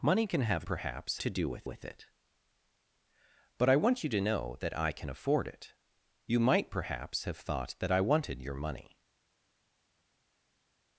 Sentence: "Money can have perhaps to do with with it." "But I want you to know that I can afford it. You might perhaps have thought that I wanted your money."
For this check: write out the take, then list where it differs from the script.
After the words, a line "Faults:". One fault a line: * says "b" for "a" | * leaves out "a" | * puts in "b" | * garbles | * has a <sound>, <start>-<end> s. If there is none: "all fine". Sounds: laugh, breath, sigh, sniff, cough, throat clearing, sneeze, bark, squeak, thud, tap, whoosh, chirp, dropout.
"Money can have perhaps to do with with it." "But I want you to know that I can afford it. You might perhaps have thought that I wanted your money."
Faults:
all fine